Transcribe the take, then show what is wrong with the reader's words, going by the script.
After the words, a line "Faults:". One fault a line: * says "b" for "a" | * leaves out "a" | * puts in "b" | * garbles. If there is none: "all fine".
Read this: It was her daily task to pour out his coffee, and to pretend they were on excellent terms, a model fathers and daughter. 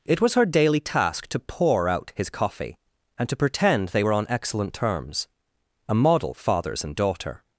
It was her daily task to pour out his coffee, and to pretend they were on excellent terms, a model fathers and daughter.
Faults:
all fine